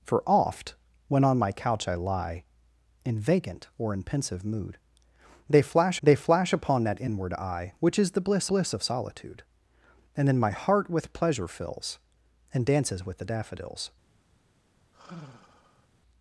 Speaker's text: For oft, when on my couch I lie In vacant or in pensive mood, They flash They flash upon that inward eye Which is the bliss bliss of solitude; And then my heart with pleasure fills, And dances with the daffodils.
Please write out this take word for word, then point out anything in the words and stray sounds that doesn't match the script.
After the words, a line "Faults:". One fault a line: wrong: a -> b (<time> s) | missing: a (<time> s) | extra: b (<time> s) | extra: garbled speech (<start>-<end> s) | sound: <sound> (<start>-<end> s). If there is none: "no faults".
For oft, when on my couch I lie In vacant or in pensive mood, They flash They flash upon that inward eye Which is the bliss bliss of solitude; And then my heart with pleasure fills, And dances with the daffodils.
Faults:
sound: sigh (14.9-15.9 s)